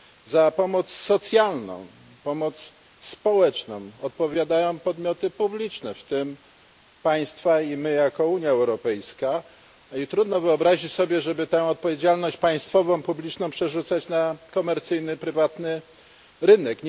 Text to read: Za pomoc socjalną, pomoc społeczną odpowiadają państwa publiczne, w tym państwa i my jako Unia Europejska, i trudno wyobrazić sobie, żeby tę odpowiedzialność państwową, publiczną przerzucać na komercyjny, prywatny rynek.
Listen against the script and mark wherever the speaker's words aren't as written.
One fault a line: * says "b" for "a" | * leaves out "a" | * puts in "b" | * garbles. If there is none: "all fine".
* says "podmioty" for "państwa"